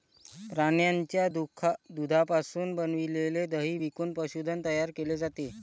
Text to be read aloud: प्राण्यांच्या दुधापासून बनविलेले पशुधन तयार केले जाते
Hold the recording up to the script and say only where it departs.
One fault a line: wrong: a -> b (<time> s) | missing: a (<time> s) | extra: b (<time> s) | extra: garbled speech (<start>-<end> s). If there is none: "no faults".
extra: दही विकून (3.5 s)